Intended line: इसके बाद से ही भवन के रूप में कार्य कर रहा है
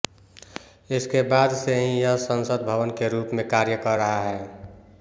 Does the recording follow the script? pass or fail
fail